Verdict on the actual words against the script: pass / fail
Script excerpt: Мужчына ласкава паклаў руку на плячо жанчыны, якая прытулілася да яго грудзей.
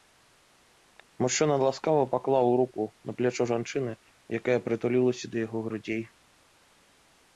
pass